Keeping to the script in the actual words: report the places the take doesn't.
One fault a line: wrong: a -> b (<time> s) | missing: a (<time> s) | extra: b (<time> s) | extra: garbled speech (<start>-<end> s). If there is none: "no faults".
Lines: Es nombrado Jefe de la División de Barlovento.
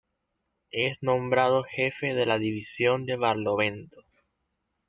no faults